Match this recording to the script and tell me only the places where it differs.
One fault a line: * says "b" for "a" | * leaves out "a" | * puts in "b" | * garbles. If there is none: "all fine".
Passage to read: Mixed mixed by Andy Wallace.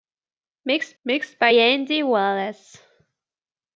all fine